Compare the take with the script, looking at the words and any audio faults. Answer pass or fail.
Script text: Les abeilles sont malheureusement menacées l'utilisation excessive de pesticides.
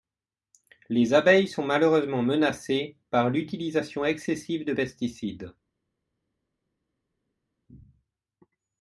fail